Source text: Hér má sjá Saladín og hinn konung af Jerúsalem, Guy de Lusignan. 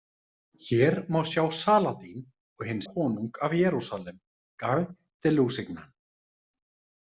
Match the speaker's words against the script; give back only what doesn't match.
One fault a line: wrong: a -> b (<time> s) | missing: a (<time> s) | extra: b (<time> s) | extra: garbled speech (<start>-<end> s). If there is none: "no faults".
no faults